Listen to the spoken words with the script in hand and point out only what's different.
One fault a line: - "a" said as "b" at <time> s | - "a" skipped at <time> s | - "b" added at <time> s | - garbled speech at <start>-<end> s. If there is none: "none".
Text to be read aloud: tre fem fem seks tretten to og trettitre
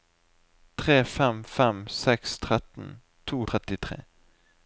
none